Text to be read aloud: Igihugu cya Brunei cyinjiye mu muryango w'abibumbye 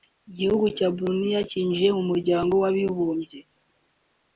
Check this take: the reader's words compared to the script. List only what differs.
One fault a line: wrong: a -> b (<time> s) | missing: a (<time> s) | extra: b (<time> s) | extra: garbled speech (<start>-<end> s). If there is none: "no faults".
no faults